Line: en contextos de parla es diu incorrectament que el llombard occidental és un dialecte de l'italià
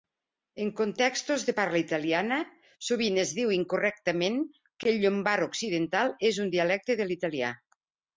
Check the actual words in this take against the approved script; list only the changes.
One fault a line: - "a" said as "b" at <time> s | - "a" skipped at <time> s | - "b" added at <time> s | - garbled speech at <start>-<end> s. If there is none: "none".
- "italiana sovint" added at 1.8 s